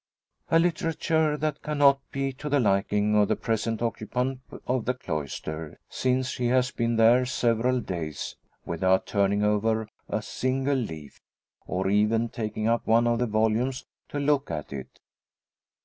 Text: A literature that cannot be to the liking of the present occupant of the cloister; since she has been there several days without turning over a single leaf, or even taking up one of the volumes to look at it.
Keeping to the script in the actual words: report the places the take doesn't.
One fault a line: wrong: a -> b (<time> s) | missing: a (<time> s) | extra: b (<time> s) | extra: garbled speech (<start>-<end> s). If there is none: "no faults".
no faults